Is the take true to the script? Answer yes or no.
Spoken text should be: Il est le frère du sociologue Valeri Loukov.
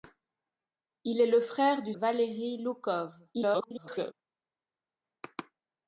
no